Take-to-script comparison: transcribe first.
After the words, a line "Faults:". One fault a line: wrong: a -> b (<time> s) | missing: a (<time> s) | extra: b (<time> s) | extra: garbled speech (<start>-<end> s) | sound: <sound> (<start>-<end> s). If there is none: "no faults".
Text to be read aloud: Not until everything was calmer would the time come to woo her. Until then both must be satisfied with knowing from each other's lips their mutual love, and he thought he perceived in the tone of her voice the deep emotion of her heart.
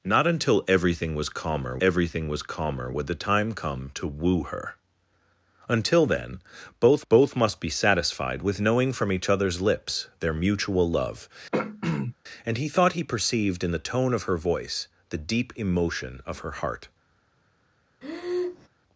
Not until everything was calmer everything was calmer would the time come to woo her. Until then both both must be satisfied with knowing from each other's lips their mutual love, and he thought he perceived in the tone of her voice the deep emotion of her heart.
Faults:
extra: everything was calmer (1.8 s)
extra: both (7.1 s)
sound: throat clearing (11.5-12.1 s)
sound: breath (18.0-18.7 s)